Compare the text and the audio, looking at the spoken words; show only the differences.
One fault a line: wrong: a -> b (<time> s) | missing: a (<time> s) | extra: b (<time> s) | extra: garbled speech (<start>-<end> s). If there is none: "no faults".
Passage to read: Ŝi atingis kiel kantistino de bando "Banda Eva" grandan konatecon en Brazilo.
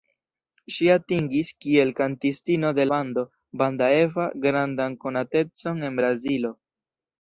no faults